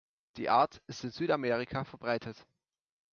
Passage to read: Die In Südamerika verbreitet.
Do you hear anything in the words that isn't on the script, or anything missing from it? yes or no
yes